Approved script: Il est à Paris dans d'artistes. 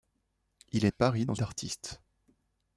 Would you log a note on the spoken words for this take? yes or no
no